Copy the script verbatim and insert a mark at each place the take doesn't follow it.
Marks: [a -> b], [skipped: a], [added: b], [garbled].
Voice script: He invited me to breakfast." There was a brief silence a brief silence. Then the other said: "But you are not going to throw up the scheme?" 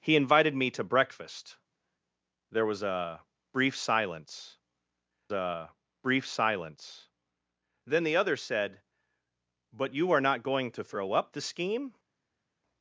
He invited me to breakfast." There was a brief silence a brief silence. Then the other said: "But you are not going to throw up the scheme?"